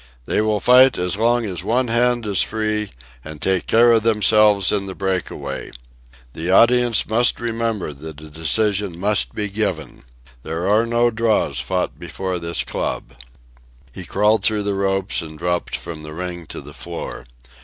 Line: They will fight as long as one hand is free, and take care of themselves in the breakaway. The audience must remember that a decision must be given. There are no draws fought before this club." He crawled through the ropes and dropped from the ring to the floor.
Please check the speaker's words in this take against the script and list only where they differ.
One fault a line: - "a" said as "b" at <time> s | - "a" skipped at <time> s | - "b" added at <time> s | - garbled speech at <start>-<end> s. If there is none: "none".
none